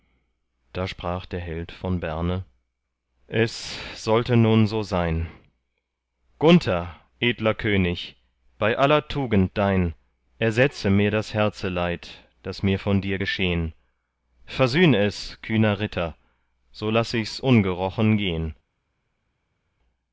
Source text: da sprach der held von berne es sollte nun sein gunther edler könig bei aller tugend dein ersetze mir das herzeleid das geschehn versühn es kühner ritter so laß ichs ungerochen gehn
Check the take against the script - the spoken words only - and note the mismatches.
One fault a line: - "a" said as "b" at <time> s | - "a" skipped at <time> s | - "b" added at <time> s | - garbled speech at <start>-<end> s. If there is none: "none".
- "so" added at 4.7 s
- "mir von dir" added at 12.6 s